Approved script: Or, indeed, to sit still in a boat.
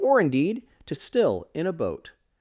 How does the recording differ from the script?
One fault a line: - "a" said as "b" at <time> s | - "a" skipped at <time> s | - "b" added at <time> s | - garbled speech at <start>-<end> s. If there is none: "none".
- "sit" skipped at 0.9 s